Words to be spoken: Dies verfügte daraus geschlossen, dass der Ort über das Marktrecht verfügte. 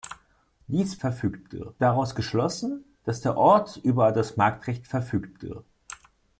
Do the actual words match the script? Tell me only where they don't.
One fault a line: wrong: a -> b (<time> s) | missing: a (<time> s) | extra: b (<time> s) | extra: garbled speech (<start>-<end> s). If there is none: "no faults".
no faults